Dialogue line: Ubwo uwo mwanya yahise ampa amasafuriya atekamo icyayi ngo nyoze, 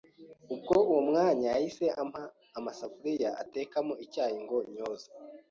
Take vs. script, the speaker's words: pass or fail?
pass